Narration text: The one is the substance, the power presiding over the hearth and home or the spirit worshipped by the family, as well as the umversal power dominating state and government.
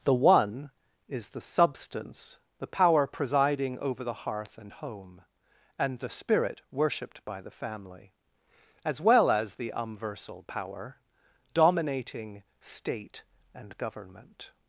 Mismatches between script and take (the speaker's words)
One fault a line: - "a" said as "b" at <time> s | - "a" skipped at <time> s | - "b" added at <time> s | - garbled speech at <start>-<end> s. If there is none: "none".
- "or" said as "and" at 5.8 s